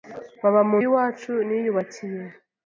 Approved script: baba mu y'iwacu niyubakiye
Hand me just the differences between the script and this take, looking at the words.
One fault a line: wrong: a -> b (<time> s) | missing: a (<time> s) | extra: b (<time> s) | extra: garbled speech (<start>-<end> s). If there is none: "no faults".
no faults